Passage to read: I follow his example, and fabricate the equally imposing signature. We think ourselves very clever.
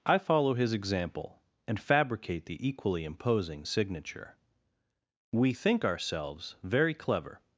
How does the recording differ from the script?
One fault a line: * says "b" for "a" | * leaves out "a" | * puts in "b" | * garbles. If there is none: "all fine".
all fine